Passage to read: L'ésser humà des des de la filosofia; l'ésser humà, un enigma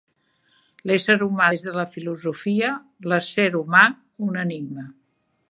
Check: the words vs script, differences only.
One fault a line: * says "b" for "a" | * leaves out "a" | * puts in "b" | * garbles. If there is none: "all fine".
* leaves out "des"